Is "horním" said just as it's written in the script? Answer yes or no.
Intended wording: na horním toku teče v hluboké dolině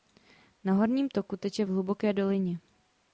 yes